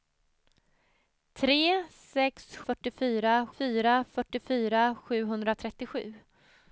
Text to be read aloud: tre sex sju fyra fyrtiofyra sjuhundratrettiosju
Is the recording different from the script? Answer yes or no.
yes